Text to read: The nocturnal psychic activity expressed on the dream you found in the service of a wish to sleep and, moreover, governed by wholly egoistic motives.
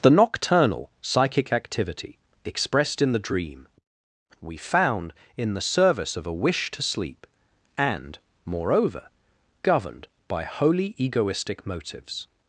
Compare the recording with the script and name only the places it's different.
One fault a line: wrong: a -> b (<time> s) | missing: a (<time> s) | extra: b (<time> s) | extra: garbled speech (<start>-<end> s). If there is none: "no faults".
wrong: on -> in (3.0 s)
wrong: you -> we (4.4 s)